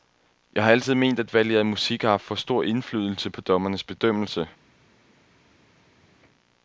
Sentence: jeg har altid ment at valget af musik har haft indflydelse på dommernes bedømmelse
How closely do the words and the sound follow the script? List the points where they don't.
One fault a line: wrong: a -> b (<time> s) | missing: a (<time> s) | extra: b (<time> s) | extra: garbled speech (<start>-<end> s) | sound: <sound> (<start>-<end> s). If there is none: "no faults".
extra: for stor (2.2 s)